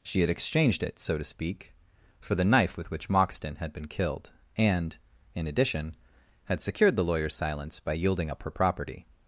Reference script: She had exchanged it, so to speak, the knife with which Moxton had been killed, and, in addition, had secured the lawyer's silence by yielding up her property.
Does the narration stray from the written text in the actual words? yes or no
yes